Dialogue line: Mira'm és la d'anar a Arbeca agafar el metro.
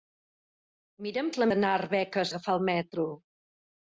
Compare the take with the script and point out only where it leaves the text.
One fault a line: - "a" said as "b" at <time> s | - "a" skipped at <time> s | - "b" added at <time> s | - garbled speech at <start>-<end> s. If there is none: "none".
none